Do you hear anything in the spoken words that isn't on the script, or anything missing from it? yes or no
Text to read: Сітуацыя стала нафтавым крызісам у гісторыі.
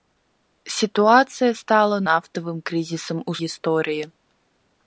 no